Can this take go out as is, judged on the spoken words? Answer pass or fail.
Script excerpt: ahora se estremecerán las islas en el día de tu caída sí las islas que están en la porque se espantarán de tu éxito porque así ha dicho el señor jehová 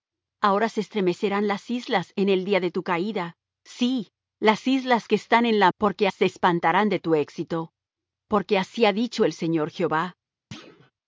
pass